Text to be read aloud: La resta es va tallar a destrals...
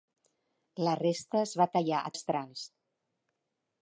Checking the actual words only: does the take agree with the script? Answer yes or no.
yes